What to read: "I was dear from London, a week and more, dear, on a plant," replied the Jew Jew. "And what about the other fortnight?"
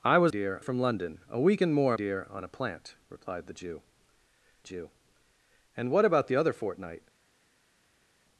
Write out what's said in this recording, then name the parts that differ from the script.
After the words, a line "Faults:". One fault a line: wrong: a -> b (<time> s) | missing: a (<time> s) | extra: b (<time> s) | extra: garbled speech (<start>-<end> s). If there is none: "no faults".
"I was dear from London, a week and more, dear, on a plant," replied the Jew Jew. "And what about the other fortnight?"
Faults:
no faults